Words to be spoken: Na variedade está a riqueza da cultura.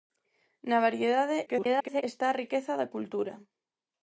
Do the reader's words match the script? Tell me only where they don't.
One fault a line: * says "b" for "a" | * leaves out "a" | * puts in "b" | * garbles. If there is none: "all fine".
* garbles